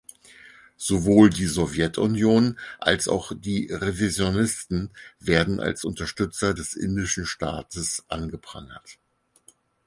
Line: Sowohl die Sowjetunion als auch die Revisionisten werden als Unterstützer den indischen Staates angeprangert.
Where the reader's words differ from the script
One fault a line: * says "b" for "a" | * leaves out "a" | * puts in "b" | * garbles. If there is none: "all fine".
* says "des" for "den"